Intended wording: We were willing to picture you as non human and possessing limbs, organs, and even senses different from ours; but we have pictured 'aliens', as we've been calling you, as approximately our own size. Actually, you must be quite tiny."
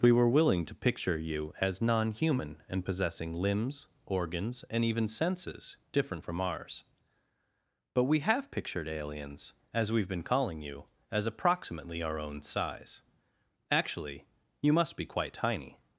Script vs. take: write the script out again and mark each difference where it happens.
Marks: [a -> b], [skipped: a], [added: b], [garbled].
We were willing to picture you as non human and possessing limbs, organs, and even senses different from ours; but we have pictured 'aliens', as we've been calling you, as approximately our own size. Actually, you must be quite tiny."